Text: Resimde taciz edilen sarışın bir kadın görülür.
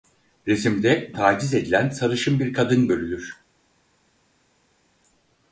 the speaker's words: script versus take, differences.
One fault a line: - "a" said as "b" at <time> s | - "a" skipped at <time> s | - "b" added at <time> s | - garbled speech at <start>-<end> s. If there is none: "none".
none